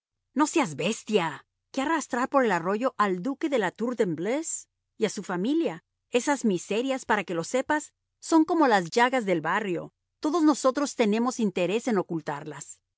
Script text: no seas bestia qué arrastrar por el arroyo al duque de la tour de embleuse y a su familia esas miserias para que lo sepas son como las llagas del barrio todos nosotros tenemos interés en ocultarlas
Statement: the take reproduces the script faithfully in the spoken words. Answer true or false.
true